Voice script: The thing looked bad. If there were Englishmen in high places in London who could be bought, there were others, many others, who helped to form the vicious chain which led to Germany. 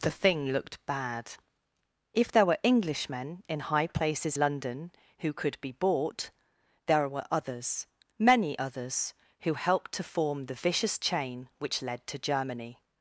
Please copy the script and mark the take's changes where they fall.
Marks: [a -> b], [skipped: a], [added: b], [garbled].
The thing looked bad. If there were Englishmen in high places [skipped: in] London who could be bought, there were others, many others, who helped to form the vicious chain which led to Germany.